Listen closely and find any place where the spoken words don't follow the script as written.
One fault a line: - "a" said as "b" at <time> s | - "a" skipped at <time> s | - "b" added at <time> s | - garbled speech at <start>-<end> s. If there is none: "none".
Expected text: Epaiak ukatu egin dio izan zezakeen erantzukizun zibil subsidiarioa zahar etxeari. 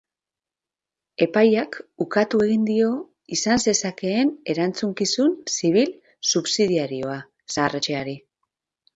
none